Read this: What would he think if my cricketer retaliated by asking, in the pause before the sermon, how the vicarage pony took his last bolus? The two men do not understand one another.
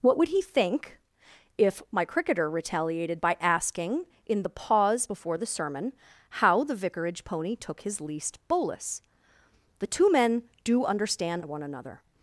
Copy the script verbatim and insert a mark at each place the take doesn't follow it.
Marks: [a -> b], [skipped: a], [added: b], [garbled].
What would he think if my cricketer retaliated by asking, in the pause before the sermon, how the vicarage pony took his [last -> least] bolus? The two men do [skipped: not] understand one another.